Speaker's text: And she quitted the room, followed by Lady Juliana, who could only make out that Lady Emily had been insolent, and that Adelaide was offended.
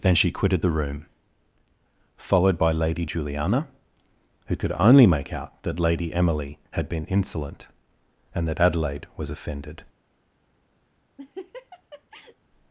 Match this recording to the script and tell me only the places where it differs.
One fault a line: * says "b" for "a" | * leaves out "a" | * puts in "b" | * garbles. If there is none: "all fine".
* says "Then" for "And"